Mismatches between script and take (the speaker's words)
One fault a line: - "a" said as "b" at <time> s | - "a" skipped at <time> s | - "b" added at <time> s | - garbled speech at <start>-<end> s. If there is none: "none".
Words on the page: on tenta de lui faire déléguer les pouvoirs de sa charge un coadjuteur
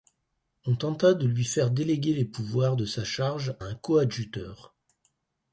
none